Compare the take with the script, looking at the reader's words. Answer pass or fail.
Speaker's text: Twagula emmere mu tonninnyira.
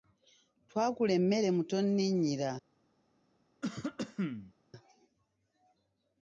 pass